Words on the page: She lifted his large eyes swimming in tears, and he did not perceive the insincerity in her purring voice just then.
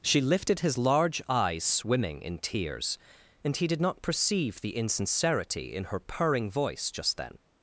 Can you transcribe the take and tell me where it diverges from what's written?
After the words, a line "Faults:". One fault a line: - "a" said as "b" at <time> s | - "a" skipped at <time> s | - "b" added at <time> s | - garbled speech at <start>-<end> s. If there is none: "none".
She lifted his large eyes swimming in tears, and he did not perceive the insincerity in her purring voice just then.
Faults:
none